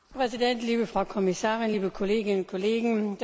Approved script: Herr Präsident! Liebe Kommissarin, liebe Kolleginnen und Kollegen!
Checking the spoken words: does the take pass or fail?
fail